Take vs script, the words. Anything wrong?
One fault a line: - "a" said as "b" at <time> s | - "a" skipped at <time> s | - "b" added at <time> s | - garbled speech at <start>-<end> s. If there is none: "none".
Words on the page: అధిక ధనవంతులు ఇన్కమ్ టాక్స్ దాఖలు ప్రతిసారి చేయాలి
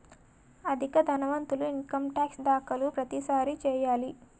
none